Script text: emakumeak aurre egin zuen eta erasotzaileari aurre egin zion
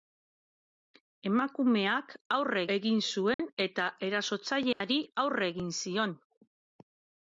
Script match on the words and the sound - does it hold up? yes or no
no